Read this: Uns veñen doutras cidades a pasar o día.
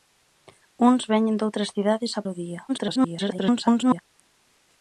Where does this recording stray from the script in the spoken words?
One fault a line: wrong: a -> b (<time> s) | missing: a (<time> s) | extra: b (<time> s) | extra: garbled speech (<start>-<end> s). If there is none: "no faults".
missing: pasar (2.2 s)
extra: garbled speech (2.7-4.0 s)